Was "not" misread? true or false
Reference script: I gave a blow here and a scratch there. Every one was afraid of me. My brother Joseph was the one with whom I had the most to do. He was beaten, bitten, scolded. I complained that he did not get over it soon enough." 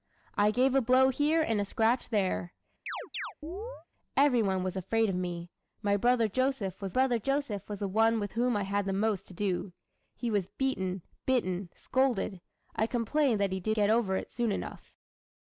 true